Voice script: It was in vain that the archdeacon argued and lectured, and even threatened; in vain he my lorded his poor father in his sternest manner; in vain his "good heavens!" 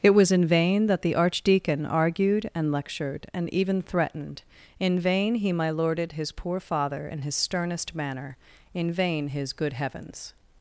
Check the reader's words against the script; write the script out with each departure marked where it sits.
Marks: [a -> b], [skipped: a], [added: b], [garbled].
It was in vain that the archdeacon argued and lectured, and even threatened; in vain he my lorded his poor father in his sternest manner; in vain his "good heavens!"